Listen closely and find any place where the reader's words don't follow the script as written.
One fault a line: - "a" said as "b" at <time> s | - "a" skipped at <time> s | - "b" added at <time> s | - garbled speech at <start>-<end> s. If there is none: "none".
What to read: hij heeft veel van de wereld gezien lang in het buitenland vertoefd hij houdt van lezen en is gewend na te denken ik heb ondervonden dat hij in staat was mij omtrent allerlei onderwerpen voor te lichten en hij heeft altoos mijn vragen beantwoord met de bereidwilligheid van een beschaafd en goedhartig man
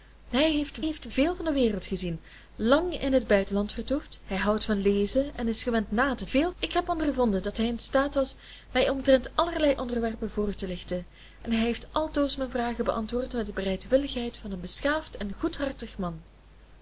- "heeft" added at 0.8 s
- "denken" said as "veel" at 6.2 s